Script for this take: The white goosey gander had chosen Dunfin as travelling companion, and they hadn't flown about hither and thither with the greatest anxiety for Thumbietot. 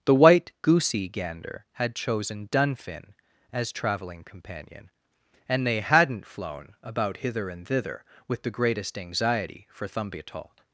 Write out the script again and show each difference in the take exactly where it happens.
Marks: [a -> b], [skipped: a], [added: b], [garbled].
The white goosey gander had chosen Dunfin as travelling companion, and they hadn't flown about hither and thither with the greatest anxiety for Thumbietot.